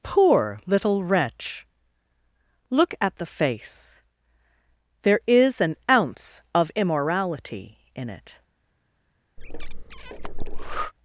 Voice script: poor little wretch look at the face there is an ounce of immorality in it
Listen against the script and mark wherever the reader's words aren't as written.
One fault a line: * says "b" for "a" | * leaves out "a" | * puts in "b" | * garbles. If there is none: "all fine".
all fine